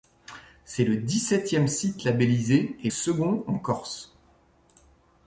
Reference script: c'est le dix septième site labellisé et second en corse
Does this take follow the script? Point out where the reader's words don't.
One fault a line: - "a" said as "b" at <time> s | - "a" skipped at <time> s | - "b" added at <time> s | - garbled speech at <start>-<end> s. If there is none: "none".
none